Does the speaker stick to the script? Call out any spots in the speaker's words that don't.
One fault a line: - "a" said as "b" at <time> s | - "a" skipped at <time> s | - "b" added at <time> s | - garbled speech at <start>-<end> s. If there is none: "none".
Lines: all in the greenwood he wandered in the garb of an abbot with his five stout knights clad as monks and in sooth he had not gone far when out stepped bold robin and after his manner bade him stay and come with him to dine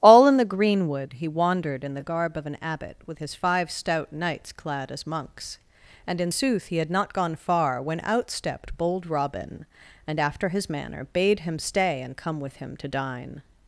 none